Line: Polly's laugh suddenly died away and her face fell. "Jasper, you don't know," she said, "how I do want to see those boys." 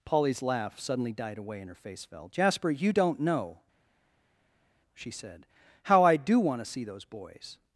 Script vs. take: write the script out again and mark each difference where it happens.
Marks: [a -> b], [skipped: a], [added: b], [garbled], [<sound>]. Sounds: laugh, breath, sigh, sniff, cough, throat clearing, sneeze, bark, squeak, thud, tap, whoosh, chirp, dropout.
Polly's laugh suddenly died away and her face fell. "Jasper, you don't know," she said, "how I do want to see those boys."